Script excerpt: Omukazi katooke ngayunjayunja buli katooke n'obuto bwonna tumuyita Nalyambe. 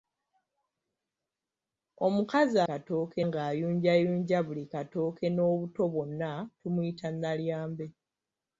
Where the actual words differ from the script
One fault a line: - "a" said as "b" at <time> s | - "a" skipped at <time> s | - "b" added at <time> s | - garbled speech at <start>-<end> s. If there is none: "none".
none